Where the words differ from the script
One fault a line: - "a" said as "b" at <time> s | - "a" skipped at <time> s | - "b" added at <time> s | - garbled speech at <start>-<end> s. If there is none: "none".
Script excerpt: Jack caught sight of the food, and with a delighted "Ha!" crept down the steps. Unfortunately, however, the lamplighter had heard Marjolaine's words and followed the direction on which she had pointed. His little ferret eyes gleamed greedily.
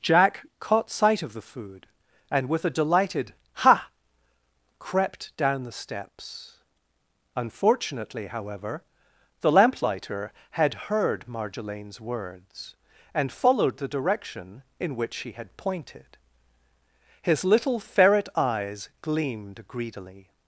- "on" said as "in" at 14.8 s